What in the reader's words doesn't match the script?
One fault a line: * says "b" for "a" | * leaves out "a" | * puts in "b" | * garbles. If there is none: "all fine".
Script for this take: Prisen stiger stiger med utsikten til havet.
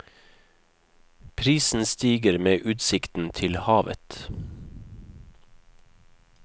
* leaves out "stiger"